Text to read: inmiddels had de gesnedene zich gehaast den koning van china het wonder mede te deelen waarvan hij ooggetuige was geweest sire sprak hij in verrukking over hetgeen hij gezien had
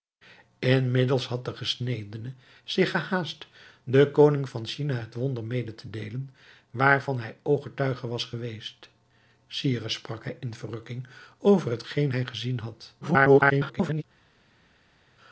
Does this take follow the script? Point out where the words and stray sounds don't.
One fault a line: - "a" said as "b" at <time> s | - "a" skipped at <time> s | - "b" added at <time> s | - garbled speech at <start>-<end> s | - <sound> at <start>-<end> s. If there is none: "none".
- garbled speech at 13.0-14.0 s